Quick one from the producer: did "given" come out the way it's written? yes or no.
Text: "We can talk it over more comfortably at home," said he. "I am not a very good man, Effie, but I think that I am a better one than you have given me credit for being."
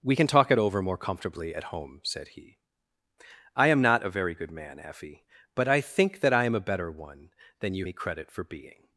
no